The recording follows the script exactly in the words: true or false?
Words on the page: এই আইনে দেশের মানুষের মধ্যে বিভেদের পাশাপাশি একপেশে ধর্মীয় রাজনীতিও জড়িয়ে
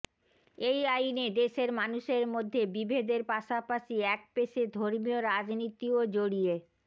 true